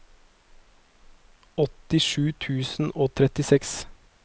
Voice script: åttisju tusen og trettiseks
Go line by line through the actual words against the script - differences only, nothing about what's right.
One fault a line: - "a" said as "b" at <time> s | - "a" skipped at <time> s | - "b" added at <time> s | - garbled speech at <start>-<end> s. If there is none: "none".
none